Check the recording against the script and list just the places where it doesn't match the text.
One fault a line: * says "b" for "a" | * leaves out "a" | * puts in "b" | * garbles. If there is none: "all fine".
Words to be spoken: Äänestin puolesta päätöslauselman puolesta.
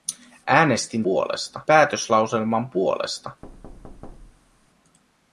all fine